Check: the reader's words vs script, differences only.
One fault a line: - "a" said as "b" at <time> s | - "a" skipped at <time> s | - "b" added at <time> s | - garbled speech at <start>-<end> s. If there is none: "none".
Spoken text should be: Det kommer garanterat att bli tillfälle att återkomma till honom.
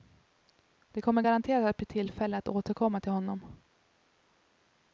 none